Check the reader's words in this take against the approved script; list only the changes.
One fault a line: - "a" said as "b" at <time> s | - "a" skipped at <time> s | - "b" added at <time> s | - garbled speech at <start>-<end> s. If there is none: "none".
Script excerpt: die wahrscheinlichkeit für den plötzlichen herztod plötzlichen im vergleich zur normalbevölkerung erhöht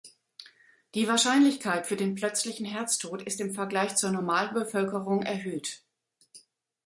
- "plötzlichen" said as "ist" at 3.2 s